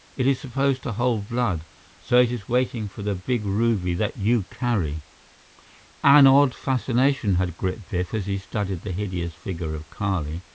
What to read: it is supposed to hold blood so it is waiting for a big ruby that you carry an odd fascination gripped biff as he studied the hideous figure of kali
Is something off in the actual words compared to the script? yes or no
yes